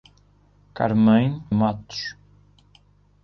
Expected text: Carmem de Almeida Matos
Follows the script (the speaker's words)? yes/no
no